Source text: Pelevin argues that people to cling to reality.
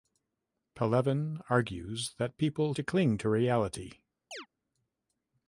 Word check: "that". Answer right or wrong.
right